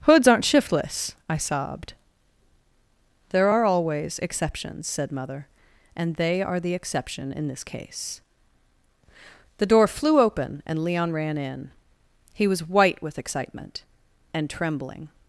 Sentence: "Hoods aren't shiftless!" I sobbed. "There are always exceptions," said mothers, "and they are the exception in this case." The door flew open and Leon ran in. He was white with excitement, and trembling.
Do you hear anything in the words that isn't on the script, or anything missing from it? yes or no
yes